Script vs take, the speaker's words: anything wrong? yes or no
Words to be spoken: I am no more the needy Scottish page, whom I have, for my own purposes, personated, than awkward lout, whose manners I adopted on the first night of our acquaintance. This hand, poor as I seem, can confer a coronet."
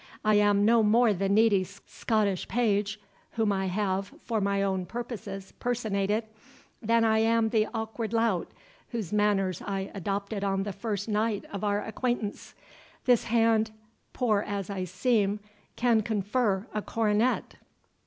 yes